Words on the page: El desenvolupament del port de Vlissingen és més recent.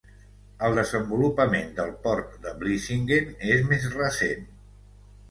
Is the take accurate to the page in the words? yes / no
yes